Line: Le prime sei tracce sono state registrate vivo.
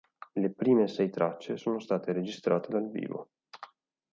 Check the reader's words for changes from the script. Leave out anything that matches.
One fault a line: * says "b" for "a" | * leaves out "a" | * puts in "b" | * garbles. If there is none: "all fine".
* puts in "dal"